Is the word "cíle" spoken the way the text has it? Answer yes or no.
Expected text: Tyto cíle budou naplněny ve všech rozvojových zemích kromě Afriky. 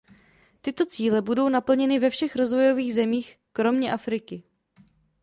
yes